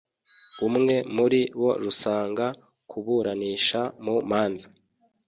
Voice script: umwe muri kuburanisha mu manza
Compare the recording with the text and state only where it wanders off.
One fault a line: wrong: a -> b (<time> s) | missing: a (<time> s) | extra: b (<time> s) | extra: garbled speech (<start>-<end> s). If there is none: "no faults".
extra: bo rusanga (1.6 s)